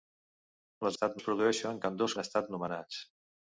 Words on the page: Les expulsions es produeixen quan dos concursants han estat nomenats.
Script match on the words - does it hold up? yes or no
no